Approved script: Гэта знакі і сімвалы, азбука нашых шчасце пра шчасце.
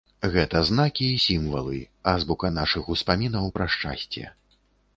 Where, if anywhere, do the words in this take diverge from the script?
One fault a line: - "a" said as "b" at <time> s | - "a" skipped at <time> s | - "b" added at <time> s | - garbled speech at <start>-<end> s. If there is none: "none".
- "шчасце" said as "успамінаў" at 3.0 s